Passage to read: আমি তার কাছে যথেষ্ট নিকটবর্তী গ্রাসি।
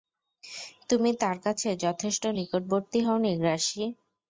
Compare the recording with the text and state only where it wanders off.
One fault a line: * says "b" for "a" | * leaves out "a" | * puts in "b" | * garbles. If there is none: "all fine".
* says "তুমি" for "আমি"
* puts in "হওনি"